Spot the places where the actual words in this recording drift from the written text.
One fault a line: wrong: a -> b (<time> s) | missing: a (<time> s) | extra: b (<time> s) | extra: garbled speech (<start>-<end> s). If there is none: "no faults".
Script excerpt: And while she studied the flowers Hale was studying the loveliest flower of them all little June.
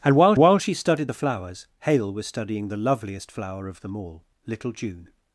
extra: while (0.4 s)